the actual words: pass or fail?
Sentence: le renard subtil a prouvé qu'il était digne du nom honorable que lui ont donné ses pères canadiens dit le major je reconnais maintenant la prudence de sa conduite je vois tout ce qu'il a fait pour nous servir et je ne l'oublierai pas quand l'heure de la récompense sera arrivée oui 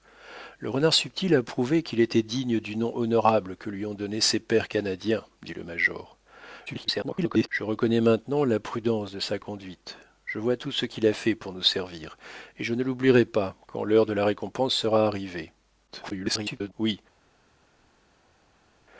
fail